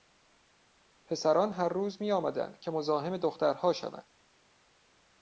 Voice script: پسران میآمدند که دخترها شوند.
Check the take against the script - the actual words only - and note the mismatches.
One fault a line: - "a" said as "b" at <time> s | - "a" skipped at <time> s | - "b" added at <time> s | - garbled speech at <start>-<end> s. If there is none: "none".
- "هر روز" added at 1.5 s
- "مزاحم" added at 2.7 s